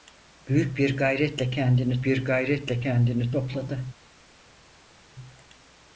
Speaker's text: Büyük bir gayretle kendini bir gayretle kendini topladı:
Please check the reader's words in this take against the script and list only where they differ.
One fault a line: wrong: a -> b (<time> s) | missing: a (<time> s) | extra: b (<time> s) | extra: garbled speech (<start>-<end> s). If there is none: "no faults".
no faults